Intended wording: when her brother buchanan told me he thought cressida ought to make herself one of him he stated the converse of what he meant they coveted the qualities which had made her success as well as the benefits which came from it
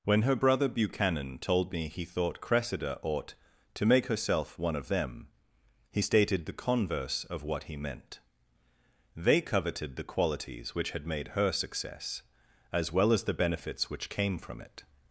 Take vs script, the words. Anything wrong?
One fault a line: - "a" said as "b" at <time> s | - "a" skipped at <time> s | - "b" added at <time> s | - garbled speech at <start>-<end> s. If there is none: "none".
- "him" said as "them" at 4.9 s